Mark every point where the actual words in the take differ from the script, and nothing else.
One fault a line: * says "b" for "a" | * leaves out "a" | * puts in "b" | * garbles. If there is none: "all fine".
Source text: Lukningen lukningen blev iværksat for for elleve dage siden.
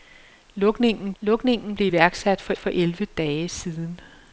all fine